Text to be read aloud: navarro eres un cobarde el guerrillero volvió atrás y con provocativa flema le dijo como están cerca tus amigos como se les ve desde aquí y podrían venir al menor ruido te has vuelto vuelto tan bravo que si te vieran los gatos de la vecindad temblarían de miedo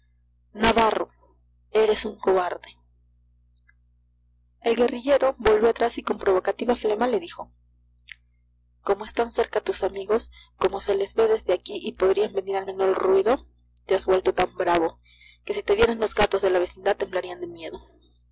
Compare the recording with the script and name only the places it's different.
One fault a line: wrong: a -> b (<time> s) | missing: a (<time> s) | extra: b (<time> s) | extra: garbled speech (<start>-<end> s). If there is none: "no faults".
missing: vuelto (14.3 s)